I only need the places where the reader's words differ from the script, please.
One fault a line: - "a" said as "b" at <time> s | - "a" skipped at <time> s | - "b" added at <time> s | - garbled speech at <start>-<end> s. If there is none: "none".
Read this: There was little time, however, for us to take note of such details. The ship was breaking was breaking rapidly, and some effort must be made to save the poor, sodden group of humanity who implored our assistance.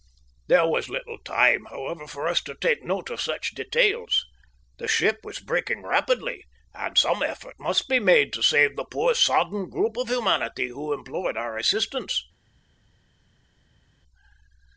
- "was breaking" skipped at 5.8 s